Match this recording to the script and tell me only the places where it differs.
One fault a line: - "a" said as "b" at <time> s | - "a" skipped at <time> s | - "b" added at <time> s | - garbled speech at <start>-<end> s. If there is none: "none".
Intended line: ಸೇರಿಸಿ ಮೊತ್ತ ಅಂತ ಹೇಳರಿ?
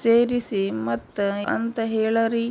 none